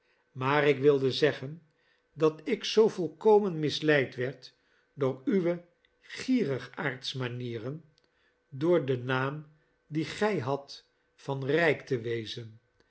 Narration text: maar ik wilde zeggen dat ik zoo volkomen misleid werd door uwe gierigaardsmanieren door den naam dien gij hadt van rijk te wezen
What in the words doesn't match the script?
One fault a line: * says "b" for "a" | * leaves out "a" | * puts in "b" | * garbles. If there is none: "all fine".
all fine